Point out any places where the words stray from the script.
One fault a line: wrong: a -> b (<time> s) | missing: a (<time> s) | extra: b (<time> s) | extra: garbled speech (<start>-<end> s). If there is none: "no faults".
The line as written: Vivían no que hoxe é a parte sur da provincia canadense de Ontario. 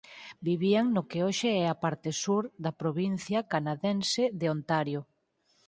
no faults